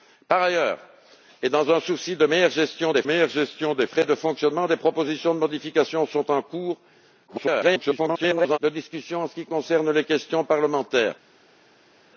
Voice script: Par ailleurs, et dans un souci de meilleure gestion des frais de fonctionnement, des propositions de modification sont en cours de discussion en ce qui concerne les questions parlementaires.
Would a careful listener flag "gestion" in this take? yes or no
no